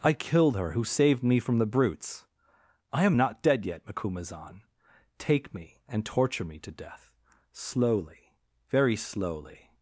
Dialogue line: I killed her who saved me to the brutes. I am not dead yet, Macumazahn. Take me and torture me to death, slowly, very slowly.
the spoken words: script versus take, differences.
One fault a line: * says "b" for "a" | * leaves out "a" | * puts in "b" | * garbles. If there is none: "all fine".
* says "from" for "to"